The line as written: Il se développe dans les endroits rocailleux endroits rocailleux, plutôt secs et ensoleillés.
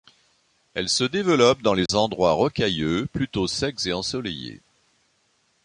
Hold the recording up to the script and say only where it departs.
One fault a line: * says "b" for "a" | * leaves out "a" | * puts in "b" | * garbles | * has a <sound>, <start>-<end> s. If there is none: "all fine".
* says "Elle" for "Il"
* has a dropout, 1.9-1.9 s
* leaves out "endroits rocailleux"